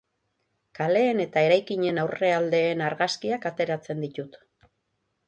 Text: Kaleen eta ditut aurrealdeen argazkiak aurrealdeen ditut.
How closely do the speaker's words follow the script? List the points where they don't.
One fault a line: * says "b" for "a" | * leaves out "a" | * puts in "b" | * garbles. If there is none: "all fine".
* says "eraikinen" for "ditut"
* says "ateratzen" for "aurrealdeen"